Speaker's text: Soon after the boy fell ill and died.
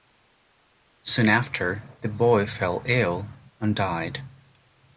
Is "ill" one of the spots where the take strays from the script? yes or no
no